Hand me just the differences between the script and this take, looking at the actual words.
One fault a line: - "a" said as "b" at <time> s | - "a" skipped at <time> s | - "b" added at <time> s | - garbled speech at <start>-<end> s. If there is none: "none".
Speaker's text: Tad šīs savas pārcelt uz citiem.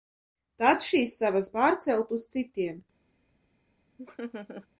none